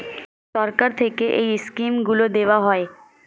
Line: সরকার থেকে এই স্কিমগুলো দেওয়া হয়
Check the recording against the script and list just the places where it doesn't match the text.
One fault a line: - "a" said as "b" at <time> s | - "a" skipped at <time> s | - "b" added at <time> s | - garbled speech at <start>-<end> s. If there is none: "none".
none